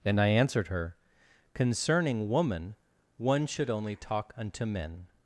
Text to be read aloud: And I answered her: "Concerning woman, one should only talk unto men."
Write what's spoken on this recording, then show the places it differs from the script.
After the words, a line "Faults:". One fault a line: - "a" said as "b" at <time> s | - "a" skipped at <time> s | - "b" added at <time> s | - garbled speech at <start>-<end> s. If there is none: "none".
And I answered her: "Concerning woman, one should only talk unto men."
Faults:
none